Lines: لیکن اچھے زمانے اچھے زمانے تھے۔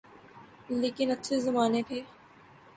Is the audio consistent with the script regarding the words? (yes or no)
no